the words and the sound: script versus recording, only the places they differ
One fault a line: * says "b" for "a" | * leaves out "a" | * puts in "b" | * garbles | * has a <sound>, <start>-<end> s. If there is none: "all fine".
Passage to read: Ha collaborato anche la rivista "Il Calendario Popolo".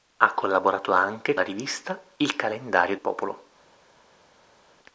all fine